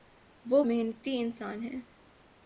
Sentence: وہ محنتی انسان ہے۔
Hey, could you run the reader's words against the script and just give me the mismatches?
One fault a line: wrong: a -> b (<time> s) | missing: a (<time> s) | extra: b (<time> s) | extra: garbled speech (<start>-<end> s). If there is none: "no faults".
no faults